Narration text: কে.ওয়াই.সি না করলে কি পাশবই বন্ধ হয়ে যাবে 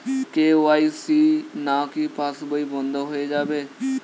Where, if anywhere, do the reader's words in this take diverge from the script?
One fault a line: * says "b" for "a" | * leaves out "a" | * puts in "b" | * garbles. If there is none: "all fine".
* leaves out "করলে"